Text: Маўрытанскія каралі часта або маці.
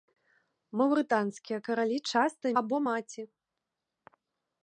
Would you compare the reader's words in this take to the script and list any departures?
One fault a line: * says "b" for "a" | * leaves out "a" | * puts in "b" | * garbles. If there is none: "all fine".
all fine